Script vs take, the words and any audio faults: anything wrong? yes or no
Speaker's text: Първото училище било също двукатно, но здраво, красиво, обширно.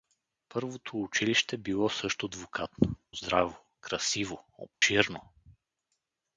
yes